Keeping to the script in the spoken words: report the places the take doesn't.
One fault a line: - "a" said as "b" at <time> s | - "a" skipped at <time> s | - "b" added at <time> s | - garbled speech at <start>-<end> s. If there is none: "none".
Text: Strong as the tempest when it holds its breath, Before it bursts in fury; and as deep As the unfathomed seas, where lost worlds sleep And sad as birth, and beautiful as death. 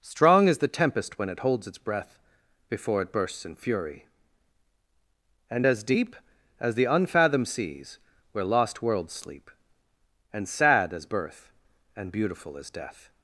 none